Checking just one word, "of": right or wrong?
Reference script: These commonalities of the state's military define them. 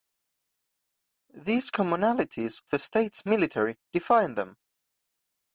wrong